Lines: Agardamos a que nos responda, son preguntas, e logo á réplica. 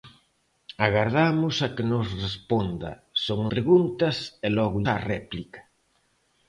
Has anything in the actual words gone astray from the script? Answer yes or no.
no